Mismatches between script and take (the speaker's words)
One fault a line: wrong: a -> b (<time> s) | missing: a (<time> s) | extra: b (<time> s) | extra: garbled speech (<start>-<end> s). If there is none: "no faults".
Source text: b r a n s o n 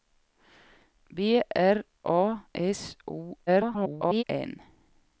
missing: n (2.5 s)
extra: garbled speech (3.5-4.2 s)